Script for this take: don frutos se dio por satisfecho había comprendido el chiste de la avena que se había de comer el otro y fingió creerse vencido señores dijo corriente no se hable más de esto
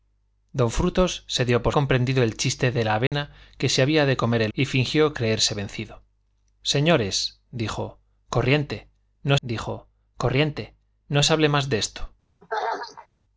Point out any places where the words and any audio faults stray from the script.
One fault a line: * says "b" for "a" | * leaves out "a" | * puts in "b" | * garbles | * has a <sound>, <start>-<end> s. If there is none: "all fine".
* leaves out "satisfecho había"
* has a dropout, 3.1-3.1 s
* leaves out "otro"
* puts in "dijo corriente no"
* has a throat clearing, 12.4-13.1 s